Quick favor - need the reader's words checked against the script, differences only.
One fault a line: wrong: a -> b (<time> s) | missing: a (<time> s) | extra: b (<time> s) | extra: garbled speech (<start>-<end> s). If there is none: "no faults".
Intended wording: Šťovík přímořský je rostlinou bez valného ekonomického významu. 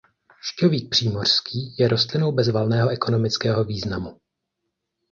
no faults